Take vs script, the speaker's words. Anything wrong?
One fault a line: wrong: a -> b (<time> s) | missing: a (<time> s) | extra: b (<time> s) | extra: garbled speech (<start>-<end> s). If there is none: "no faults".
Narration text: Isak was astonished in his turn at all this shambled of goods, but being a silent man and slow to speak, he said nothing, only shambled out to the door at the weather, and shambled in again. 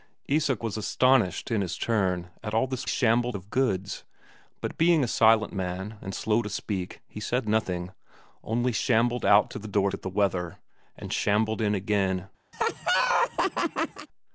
no faults